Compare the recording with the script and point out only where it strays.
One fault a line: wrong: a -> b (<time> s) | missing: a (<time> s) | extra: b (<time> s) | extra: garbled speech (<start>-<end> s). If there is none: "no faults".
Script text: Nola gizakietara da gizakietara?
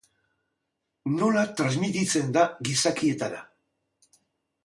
wrong: gizakietara -> transmititzen (1.6 s)